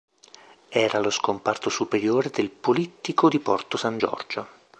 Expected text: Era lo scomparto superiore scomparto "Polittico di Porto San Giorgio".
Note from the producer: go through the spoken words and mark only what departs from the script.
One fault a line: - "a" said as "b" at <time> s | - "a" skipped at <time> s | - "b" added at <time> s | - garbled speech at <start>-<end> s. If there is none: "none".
- "scomparto" said as "del" at 2.3 s